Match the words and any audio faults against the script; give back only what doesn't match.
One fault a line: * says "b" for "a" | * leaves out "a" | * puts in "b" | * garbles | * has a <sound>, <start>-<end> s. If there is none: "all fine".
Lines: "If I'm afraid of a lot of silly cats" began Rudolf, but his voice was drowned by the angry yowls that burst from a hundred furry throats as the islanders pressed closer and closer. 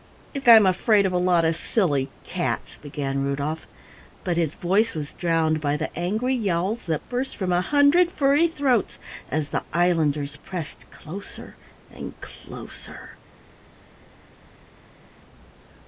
all fine